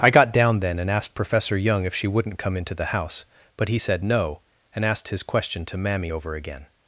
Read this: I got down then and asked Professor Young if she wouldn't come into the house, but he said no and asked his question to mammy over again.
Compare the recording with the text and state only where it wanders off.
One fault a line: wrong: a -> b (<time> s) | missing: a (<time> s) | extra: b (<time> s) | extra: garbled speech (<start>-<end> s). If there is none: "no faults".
no faults